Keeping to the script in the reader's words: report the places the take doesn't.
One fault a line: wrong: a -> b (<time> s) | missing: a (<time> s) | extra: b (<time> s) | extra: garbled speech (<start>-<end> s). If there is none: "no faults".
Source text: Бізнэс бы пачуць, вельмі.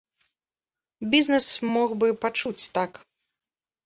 extra: мог (1.7 s)
wrong: вельмі -> так (2.8 s)